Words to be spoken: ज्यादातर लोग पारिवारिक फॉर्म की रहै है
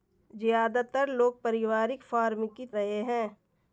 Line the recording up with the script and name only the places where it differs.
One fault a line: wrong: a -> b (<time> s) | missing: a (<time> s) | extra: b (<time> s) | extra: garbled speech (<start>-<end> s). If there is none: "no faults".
no faults